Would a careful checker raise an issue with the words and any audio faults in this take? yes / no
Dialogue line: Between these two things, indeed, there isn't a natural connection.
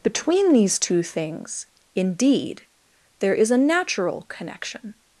yes